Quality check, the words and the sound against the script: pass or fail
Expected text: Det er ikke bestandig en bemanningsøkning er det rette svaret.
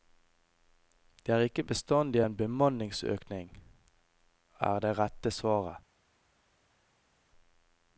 pass